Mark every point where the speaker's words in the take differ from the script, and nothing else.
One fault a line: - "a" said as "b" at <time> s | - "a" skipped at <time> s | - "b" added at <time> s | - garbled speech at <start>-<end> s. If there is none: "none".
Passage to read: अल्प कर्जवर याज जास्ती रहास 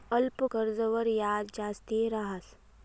none